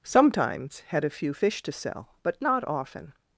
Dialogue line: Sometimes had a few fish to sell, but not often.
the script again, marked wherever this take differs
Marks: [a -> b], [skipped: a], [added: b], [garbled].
Sometimes had a few fish to sell, but not often.